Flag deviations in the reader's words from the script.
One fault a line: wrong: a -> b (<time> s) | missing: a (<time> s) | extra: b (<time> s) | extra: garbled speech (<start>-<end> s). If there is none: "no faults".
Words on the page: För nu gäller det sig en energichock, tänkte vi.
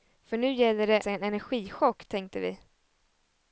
no faults